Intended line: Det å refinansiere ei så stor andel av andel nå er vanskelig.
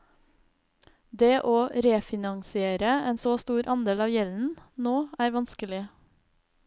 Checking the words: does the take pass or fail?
fail